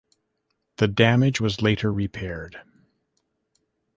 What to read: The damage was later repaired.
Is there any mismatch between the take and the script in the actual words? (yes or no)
no